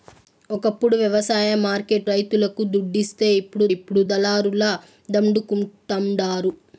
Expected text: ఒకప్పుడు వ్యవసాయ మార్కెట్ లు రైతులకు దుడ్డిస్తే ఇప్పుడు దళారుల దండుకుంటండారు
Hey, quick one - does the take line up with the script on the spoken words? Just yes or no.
no